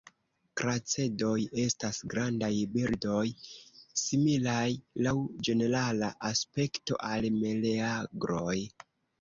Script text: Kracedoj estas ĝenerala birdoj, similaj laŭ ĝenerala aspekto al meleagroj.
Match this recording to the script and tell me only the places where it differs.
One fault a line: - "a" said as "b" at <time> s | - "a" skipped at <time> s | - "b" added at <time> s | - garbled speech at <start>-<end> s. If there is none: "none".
- "ĝenerala" said as "grandaj" at 2.1 s